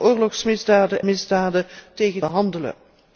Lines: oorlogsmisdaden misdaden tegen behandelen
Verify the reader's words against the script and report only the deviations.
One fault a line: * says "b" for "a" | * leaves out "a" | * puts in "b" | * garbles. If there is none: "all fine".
all fine